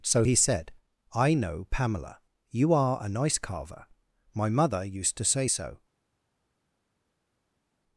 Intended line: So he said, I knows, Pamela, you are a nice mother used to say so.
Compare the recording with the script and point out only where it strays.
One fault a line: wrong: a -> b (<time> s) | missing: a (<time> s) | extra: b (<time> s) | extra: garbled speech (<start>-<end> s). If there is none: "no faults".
wrong: knows -> know (1.3 s)
extra: carver my (3.4 s)